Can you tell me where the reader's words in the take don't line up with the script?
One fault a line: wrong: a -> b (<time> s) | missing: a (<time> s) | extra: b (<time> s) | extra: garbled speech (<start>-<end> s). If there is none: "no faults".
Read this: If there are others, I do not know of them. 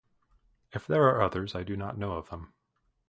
no faults